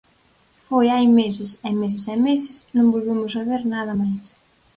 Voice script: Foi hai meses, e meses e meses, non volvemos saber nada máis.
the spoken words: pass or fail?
pass